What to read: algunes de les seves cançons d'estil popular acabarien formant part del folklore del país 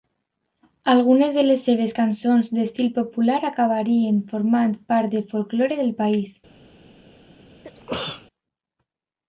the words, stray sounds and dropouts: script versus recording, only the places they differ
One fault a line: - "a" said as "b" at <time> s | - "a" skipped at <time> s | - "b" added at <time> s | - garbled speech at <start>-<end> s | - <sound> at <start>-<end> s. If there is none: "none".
- sneeze at 7.6-8.3 s